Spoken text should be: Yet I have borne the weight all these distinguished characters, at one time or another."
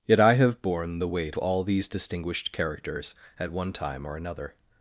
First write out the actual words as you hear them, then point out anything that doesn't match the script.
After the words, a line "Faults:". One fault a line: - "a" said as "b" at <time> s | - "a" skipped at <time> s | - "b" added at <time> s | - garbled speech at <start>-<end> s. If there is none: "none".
Yet I have borne the weight all these distinguished characters, at one time or another."
Faults:
none